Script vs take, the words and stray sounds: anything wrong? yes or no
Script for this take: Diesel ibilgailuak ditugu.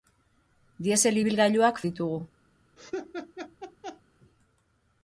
yes